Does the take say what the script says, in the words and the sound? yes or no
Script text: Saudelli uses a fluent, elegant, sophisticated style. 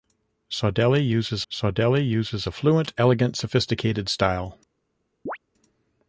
no